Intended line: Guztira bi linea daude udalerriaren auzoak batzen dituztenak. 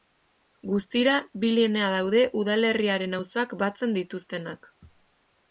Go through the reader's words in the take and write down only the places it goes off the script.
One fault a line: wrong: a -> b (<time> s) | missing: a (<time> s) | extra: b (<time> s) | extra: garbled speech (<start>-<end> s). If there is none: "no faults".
no faults